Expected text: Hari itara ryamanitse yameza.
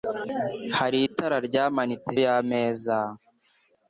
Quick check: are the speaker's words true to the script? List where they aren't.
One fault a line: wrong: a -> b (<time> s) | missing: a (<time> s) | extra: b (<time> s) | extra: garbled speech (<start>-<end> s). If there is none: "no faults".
no faults